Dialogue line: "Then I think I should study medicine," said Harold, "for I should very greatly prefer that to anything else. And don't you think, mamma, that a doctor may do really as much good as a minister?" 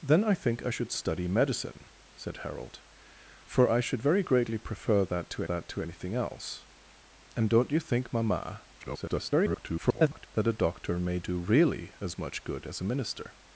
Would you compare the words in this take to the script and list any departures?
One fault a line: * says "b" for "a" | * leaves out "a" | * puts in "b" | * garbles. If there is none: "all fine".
* puts in "that to"
* garbles